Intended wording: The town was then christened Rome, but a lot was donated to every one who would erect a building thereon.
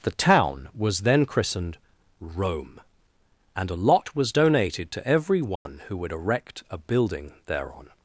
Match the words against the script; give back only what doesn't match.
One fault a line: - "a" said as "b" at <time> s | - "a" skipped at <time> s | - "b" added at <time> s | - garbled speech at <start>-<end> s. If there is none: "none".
- "but" said as "and" at 3.6 s